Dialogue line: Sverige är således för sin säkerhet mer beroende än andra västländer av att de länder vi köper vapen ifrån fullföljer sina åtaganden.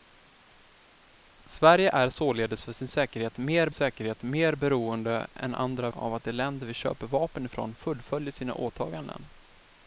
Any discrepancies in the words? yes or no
yes